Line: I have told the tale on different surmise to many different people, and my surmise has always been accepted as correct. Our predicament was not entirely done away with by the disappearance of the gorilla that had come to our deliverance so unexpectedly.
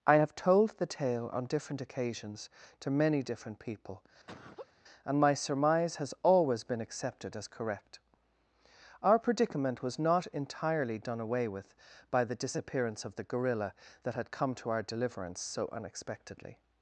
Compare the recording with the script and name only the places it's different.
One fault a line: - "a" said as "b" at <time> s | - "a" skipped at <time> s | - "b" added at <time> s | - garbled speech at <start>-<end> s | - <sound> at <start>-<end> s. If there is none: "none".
- "surmise" said as "occasions" at 1.8 s
- laugh at 4.3-4.7 s